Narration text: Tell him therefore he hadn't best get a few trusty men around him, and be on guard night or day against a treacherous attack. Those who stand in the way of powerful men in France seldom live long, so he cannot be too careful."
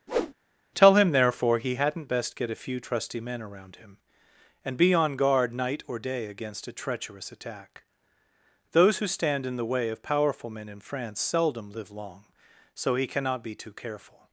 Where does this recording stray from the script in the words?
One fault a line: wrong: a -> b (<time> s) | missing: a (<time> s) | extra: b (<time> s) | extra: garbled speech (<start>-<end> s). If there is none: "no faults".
no faults